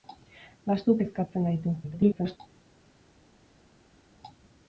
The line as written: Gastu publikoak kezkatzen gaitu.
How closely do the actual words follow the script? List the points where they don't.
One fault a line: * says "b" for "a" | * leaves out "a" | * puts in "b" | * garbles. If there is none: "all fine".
* leaves out "publikoak"
* garbles